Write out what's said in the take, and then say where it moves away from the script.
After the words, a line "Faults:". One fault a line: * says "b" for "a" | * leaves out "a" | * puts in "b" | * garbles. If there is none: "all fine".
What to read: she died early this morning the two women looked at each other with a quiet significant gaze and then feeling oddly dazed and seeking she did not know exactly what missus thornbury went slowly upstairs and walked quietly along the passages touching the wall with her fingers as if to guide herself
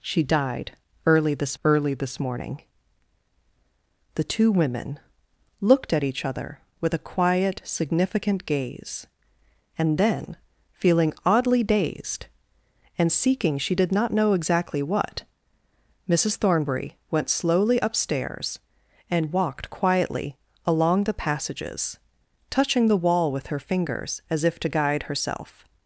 she died early this early this morning the two women looked at each other with a quiet significant gaze and then feeling oddly dazed and seeking she did not know exactly what missus thornbury went slowly upstairs and walked quietly along the passages touching the wall with her fingers as if to guide herself
Faults:
* puts in "early this"